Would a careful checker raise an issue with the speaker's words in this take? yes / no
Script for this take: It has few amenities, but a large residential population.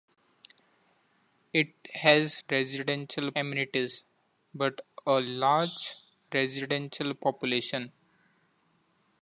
yes